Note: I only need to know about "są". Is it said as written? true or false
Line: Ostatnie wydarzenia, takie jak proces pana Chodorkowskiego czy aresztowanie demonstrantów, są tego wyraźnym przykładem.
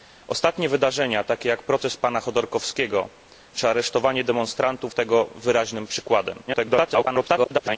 false